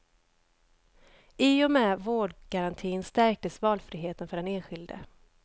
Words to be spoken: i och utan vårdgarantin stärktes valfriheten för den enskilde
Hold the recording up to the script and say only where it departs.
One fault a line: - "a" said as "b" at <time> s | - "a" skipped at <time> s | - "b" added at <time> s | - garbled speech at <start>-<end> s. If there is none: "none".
- "utan" said as "med" at 1.7 s